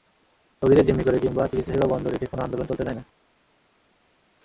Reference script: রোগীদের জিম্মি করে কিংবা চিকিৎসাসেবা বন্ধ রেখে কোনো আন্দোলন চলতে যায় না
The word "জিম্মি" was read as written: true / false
true